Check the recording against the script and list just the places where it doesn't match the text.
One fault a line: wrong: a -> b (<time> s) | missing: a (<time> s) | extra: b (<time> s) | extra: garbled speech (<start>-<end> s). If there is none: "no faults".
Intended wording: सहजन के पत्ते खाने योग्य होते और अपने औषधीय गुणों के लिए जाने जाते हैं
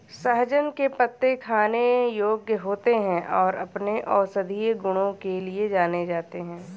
extra: हैं (3.0 s)